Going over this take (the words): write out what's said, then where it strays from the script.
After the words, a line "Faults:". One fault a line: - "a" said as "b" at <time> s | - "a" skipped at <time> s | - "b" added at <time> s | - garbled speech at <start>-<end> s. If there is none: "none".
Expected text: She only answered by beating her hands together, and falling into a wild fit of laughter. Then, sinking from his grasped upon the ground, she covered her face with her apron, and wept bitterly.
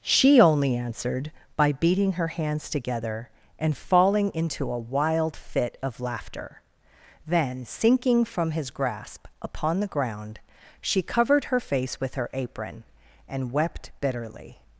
She only answered by beating her hands together, and falling into a wild fit of laughter. Then, sinking from his grasp upon the ground, she covered her face with her apron, and wept bitterly.
Faults:
- "grasped" said as "grasp" at 8.7 s